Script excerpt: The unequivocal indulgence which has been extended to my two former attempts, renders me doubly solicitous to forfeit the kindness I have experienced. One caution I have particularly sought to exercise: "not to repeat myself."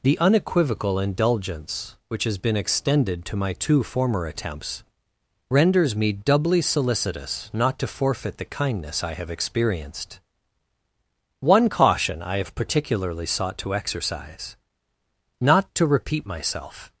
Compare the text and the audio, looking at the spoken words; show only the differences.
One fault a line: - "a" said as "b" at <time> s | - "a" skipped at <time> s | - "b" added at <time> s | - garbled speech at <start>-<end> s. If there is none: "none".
- "not" added at 7.5 s